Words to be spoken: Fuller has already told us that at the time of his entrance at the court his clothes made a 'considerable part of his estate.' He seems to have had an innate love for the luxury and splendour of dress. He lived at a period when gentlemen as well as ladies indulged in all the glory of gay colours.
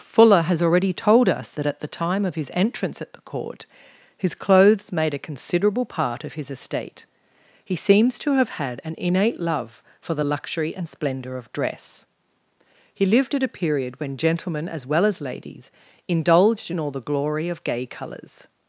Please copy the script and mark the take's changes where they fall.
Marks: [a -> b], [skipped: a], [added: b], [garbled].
Fuller has already told us that at the time of his entrance at the court his clothes made a 'considerable part of his estate.' He seems to have had an innate love for the luxury and splendour of dress. He lived at a period when gentlemen as well as ladies indulged in all the glory of gay colours.